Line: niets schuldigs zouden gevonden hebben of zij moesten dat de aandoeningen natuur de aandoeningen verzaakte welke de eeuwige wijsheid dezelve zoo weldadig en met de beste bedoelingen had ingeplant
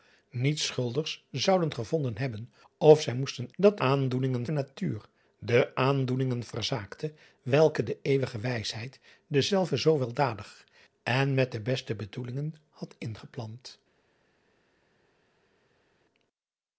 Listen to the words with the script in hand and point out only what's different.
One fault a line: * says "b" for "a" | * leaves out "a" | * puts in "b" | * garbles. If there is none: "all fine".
all fine